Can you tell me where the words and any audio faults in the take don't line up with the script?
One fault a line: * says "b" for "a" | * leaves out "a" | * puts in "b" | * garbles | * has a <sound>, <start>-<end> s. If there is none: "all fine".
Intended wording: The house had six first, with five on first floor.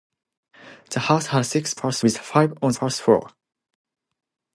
all fine